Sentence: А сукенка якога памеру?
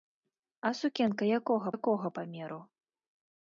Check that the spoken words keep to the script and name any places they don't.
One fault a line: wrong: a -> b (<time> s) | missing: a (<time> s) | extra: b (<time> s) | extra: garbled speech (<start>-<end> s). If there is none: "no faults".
extra: якога (1.8 s)